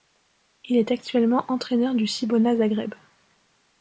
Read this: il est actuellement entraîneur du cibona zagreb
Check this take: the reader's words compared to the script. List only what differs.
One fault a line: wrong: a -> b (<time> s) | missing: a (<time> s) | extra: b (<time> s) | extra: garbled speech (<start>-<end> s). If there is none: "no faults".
no faults